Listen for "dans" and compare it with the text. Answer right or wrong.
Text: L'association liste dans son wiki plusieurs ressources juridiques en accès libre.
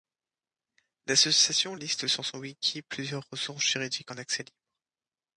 wrong